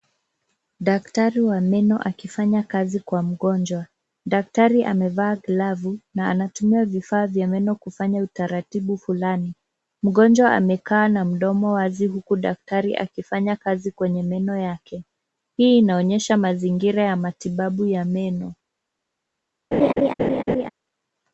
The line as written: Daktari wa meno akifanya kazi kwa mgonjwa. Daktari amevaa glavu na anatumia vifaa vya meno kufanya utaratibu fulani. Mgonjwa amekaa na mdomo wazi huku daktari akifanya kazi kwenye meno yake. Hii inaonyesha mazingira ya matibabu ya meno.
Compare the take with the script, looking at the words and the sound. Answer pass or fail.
fail